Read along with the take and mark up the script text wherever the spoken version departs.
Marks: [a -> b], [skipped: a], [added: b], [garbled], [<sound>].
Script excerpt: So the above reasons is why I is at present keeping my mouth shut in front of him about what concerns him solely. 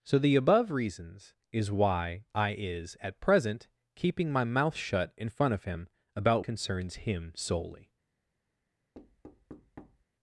So the above reasons is why I is at present keeping my mouth shut in front of him about [skipped: what] concerns him solely. [thud]